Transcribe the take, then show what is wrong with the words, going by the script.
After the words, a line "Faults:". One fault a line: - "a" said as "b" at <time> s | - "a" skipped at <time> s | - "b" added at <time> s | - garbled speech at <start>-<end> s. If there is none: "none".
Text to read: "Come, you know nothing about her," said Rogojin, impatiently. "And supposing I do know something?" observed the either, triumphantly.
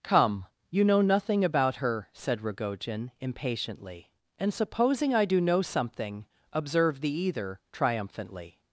"Come, you know nothing about her," said Rogojin, impatiently. "And supposing I do know something?" observed the either, triumphantly.
Faults:
none